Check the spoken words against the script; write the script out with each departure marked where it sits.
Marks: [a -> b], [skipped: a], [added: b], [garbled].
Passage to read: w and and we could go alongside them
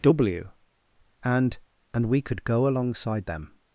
w and and we could go alongside them